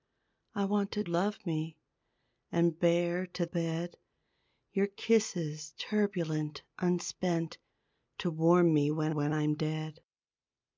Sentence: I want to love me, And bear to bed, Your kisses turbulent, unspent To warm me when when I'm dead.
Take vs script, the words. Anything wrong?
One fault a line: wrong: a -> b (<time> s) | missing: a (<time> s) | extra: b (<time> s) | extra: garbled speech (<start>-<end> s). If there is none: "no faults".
no faults